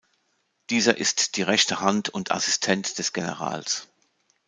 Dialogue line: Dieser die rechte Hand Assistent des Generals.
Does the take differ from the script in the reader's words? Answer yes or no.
yes